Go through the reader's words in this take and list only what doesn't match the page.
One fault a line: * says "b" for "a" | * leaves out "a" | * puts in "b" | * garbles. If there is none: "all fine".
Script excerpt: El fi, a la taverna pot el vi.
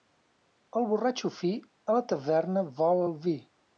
* puts in "borratxo"
* says "vol" for "pot"